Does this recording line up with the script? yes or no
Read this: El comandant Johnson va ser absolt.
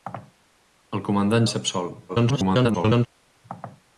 no